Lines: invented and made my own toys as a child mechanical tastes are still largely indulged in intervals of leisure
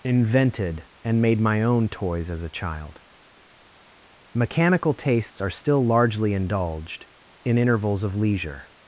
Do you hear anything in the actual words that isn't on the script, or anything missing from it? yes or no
no